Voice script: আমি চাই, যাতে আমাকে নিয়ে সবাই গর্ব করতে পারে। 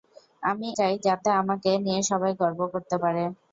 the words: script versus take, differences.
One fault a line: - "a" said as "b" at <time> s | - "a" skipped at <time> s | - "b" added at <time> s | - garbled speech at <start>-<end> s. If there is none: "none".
none